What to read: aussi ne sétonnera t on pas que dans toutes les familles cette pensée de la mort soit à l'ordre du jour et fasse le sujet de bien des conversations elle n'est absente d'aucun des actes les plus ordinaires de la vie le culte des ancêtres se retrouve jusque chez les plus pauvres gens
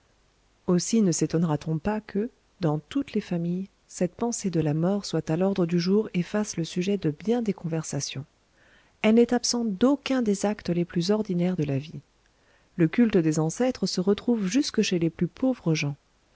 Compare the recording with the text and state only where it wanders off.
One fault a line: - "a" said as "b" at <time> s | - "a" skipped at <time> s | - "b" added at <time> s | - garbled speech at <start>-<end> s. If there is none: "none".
none